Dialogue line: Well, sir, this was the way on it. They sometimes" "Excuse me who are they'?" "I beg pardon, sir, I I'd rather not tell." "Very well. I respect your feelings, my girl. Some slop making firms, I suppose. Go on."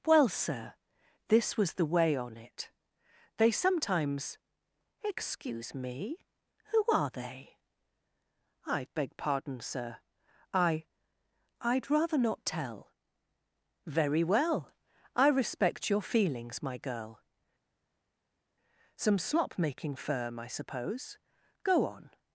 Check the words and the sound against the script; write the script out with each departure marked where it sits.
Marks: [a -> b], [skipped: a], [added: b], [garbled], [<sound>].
Well, sir, this was the way on it. They sometimes" "Excuse me who are they'?" "I beg pardon, sir, I I'd rather not tell." "Very well. I respect your feelings, my girl. Some slop making [firms, -> firm] I suppose. Go on."